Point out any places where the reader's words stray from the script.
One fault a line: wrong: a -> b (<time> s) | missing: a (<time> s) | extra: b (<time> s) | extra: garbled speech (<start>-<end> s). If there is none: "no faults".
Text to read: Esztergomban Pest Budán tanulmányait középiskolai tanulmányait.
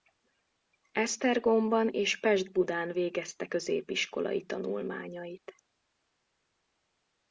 extra: és (1.9 s)
wrong: tanulmányait -> végezte (2.9 s)